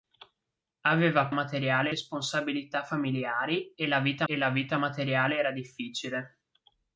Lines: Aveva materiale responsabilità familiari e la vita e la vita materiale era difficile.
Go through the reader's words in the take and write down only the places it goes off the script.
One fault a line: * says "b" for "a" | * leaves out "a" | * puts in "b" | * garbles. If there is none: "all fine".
all fine